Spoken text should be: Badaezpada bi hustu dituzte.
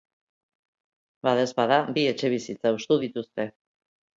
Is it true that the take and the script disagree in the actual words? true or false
true